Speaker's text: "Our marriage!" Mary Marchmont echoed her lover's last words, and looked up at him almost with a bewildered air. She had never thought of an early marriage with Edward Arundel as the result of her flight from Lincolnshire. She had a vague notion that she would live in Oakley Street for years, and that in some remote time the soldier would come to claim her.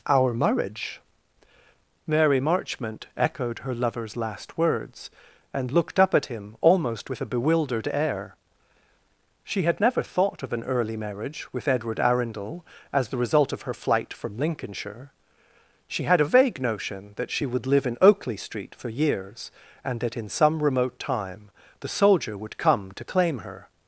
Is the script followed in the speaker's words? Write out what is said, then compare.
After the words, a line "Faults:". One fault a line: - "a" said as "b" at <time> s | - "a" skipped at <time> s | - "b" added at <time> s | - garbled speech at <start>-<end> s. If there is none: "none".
"Our marriage!" Mary Marchmont echoed her lover's last words, and looked up at him almost with a bewildered air. She had never thought of an early marriage with Edward Arundel as the result of her flight from Lincolnshire. She had a vague notion that she would live in Oakley Street for years, and that in some remote time the soldier would come to claim her.
Faults:
none